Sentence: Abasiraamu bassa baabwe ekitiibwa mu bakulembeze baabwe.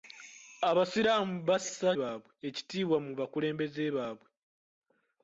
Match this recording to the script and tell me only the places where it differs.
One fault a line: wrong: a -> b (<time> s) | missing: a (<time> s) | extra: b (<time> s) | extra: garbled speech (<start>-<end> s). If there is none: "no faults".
no faults